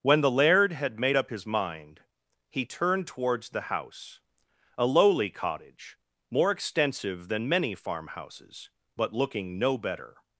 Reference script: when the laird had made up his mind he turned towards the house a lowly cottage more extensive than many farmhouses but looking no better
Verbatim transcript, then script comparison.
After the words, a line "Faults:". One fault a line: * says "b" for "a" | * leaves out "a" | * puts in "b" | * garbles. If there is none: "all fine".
when the laird had made up his mind he turned towards the house a lowly cottage more extensive than many farmhouses but looking no better
Faults:
all fine